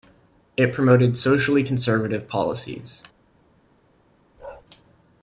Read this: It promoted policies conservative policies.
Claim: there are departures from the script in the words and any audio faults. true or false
true